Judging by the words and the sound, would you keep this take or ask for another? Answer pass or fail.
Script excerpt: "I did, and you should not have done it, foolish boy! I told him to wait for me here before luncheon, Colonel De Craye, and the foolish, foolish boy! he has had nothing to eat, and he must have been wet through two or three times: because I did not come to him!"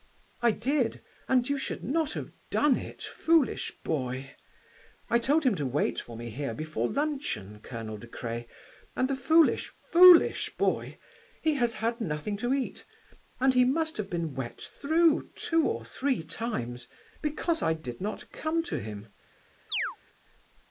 fail